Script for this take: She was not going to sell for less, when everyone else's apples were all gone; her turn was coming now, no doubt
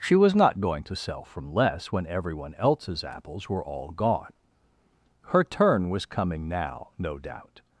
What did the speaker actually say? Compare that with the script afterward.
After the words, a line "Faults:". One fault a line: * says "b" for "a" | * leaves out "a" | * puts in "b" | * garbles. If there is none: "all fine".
She was not going to sell from less, when everyone else's apples were all gone; her turn was coming now, no doubt
Faults:
* says "from" for "for"